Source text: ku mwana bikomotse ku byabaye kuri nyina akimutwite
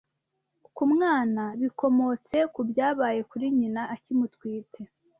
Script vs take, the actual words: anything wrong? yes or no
no